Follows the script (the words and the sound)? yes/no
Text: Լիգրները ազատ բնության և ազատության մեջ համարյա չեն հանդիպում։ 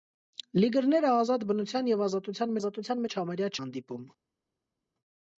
no